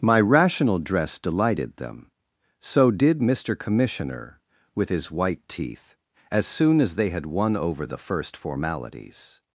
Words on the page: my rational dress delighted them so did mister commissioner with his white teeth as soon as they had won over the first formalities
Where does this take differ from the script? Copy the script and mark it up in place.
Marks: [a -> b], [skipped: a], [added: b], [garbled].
my rational dress delighted them so did mister commissioner with his white teeth as soon as they had won over the first formalities